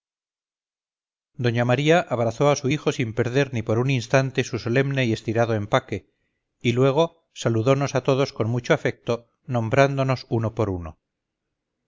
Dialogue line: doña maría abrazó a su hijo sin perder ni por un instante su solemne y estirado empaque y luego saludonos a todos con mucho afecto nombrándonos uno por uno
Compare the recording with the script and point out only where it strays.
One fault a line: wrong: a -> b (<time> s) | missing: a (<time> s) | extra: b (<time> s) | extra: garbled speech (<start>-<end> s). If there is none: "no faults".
no faults